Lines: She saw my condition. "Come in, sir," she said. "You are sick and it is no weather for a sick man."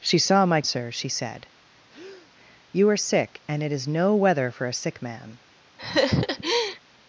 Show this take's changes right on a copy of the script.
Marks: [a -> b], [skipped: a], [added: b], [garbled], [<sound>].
She saw my [skipped: condition. "Come in,] sir," she said. [breath] "You are sick and it is no weather for a sick man." [laugh]